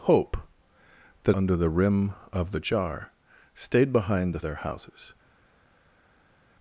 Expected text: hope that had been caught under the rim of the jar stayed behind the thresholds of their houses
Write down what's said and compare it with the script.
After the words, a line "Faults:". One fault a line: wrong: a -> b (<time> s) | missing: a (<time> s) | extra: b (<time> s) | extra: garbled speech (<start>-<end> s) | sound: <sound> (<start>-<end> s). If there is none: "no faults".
hope that under the rim of the jar stayed behind the their houses
Faults:
missing: had been caught (1.4 s)
missing: thresholds of (4.5 s)